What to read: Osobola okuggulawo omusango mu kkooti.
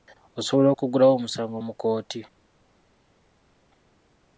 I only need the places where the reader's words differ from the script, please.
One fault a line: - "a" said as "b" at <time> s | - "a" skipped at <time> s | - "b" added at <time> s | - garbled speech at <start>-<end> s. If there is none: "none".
none